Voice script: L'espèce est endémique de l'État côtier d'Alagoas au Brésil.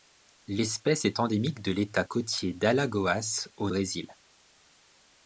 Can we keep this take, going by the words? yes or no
yes